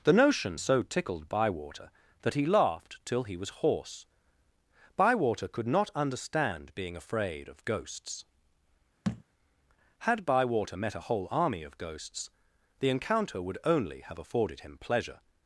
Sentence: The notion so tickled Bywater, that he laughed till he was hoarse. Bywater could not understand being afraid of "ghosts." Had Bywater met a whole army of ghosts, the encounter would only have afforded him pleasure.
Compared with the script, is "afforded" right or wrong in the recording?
right